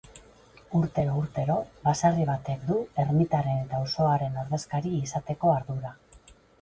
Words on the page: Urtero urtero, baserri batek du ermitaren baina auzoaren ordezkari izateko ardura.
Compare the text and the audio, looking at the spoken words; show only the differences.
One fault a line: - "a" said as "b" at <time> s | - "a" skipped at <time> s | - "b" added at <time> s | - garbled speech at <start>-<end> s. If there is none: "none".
- "baina" said as "eta" at 3.7 s